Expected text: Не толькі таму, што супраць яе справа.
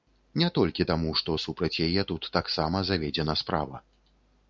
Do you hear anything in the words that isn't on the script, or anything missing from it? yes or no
yes